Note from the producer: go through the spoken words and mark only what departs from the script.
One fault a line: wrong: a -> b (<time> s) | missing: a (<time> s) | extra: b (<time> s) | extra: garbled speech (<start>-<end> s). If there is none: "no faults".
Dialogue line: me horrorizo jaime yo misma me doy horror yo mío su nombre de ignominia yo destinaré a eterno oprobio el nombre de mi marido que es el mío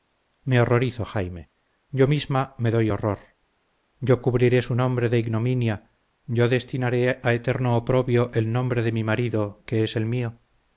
wrong: mío -> cubriré (4.2 s)